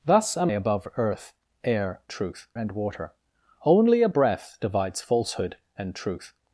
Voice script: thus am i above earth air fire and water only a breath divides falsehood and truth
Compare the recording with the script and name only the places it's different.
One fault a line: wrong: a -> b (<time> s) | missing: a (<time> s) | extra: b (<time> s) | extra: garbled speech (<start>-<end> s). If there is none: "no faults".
missing: i (0.5 s)
wrong: fire -> truth (2.1 s)